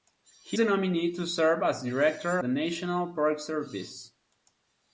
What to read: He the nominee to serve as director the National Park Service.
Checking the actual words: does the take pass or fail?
pass